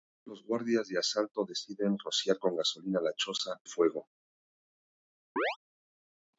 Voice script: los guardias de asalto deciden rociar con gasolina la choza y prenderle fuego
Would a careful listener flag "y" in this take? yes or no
yes